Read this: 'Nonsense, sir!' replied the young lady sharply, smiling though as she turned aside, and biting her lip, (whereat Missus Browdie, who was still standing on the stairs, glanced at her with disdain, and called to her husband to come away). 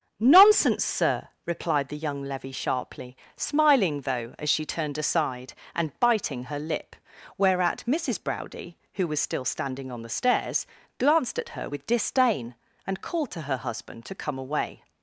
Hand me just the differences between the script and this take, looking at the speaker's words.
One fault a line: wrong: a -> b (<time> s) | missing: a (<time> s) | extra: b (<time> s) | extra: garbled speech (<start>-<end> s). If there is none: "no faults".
wrong: lady -> levy (2.2 s)